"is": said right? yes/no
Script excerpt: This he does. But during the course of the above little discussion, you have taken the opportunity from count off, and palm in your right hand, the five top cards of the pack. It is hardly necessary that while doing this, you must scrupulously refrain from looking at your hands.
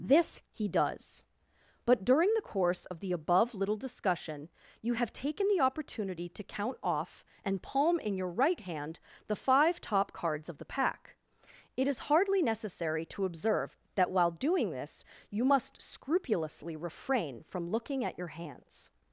yes